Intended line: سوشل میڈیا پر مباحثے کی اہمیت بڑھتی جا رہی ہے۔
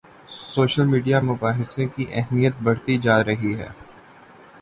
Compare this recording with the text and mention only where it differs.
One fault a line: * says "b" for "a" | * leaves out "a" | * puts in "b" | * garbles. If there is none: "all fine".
* leaves out "پر"